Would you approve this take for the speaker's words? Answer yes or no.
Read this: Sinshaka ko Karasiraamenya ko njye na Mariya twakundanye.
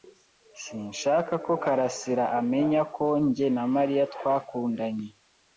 yes